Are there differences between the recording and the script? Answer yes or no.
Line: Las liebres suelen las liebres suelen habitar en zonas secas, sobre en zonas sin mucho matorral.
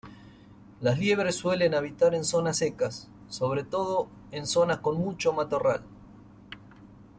yes